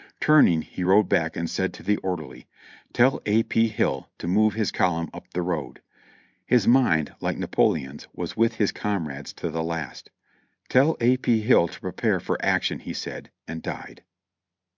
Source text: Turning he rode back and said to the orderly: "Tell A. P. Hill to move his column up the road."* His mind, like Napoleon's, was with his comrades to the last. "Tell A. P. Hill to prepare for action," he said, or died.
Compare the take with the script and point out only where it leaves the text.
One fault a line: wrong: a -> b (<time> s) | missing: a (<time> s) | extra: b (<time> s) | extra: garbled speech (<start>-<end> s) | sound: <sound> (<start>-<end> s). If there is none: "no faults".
wrong: or -> and (13.5 s)